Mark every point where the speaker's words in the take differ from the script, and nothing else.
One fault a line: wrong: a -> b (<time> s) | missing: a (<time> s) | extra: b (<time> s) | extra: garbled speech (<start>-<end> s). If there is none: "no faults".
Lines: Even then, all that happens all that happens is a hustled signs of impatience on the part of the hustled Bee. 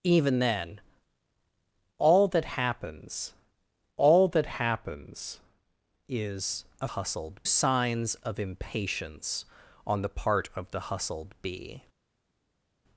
no faults